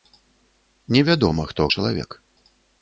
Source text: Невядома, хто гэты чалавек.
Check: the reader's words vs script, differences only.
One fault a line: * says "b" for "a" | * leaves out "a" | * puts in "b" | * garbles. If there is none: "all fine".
* leaves out "гэты"